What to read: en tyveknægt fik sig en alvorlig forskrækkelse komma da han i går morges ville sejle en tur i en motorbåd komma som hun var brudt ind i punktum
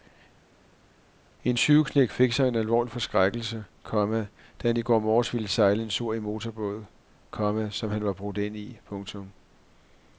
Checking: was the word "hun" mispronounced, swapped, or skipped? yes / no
yes